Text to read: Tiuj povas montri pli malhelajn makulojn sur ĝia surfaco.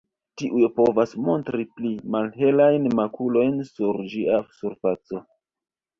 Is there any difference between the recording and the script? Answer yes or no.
no